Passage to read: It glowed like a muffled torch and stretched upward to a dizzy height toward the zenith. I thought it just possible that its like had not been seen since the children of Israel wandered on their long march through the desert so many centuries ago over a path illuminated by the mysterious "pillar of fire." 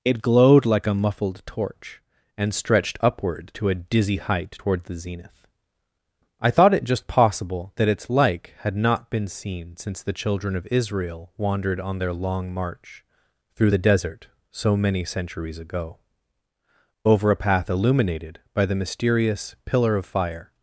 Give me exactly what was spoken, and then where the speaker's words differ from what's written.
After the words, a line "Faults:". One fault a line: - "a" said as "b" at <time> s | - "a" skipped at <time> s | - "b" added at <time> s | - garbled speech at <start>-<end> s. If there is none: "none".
It glowed like a muffled torch and stretched upward to a dizzy height toward the zenith. I thought it just possible that its like had not been seen since the children of Israel wandered on their long march through the desert so many centuries ago over a path illuminated by the mysterious "pillar of fire."
Faults:
none